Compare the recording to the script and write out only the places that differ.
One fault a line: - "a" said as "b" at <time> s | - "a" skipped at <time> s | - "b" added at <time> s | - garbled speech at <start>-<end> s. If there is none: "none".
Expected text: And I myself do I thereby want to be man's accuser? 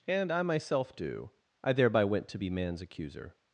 - "want" said as "went" at 2.0 s